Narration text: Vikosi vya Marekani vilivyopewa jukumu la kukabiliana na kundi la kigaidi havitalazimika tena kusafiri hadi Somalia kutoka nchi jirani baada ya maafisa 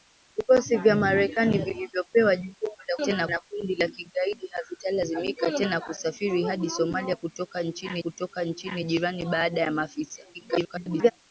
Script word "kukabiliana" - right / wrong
wrong